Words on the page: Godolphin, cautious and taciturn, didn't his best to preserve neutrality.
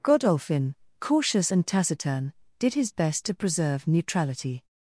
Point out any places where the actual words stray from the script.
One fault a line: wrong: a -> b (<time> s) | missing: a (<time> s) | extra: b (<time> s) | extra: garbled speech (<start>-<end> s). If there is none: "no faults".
wrong: didn't -> did (2.6 s)